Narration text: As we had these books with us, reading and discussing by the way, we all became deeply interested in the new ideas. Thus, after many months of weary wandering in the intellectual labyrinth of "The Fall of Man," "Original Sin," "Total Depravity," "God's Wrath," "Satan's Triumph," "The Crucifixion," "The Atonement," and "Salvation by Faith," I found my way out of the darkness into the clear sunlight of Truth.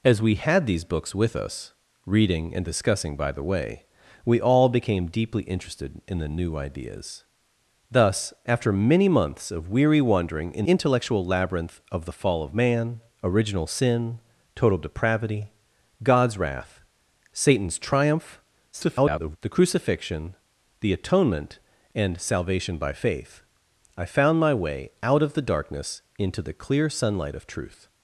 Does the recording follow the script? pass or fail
fail